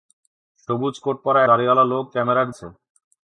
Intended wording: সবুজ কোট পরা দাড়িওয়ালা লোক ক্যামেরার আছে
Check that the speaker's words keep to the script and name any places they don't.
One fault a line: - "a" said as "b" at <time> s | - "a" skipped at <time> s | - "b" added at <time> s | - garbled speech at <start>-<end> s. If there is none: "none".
none